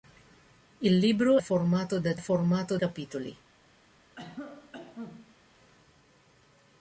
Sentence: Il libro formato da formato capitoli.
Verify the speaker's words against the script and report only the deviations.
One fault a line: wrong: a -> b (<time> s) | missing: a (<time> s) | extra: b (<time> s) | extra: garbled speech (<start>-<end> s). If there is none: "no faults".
no faults